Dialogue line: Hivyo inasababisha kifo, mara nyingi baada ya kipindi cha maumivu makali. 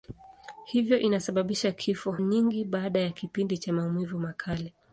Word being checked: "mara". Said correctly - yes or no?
no